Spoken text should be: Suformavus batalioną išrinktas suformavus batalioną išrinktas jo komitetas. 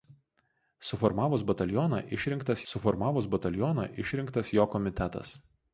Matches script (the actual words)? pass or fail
pass